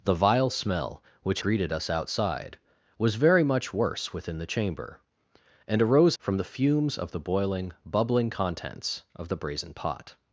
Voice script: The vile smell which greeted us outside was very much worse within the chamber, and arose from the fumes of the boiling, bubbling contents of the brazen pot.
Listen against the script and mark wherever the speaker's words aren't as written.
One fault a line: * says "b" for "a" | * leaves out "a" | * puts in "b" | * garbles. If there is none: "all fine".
all fine